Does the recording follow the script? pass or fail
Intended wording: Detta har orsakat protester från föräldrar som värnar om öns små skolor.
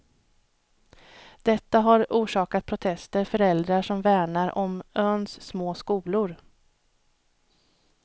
fail